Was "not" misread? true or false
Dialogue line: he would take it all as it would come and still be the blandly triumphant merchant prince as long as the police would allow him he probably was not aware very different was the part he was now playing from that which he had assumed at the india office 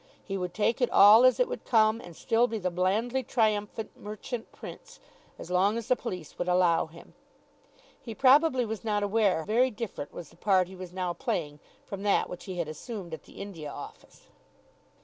false